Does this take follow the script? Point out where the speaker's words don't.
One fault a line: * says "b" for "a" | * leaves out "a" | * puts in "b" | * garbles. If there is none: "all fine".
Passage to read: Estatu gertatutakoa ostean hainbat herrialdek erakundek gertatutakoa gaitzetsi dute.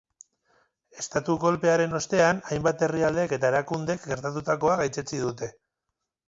* says "kolpearen" for "gertatutakoa"
* puts in "eta"